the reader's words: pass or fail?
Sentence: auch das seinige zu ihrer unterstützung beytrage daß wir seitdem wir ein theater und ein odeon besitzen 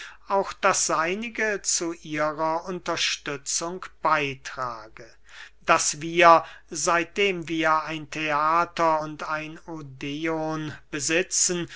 pass